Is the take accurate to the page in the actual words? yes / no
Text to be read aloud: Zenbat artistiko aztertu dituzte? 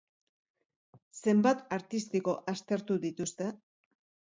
yes